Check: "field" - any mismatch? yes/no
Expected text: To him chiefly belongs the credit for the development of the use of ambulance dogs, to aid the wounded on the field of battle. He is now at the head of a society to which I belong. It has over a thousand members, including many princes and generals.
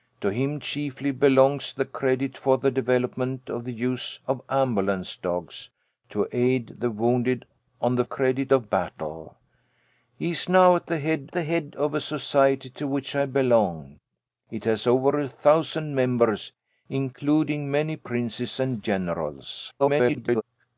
yes